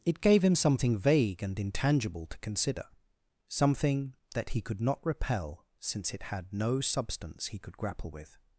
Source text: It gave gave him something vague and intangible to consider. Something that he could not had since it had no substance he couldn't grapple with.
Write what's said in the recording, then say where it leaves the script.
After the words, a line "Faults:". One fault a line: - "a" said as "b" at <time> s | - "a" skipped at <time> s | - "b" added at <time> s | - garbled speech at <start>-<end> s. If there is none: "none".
It gave him something vague and intangible to consider. Something that he could not repel since it had no substance he could grapple with.
Faults:
- "gave" skipped at 0.4 s
- "had" said as "repel" at 5.1 s
- "couldn't" said as "could" at 7.6 s